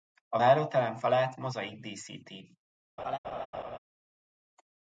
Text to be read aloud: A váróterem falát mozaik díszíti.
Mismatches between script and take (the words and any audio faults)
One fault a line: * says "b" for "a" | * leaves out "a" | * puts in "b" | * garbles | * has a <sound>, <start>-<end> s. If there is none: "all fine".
* has a laugh, 3.0-3.8 s